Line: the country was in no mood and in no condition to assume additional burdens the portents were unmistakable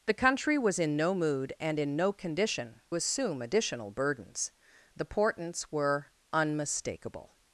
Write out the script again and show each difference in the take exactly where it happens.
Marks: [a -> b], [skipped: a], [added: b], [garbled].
the country was in no mood and in no condition [skipped: to] assume additional burdens the portents were unmistakable